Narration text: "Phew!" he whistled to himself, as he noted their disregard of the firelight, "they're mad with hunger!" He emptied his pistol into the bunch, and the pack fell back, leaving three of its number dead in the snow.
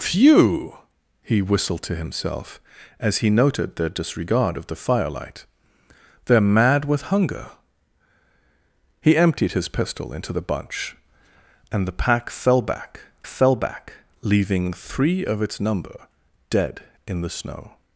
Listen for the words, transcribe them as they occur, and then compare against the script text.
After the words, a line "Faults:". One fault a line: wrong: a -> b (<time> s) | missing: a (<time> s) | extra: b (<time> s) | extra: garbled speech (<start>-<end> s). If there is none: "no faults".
"Phew!" he whistled to himself, as he noted their disregard of the firelight, "they're mad with hunger!" He emptied his pistol into the bunch, and the pack fell back fell back, leaving three of its number dead in the snow.
Faults:
extra: fell back (13.3 s)